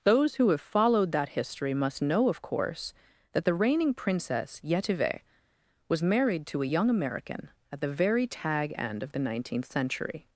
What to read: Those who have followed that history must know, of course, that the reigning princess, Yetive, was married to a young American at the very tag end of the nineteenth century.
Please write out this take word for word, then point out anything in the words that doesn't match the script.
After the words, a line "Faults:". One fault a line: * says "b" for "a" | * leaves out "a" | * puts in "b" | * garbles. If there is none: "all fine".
Those who have followed that history must know, of course, that the reigning princess, Yetive, was married to a young American at the very tag end of the nineteenth century.
Faults:
all fine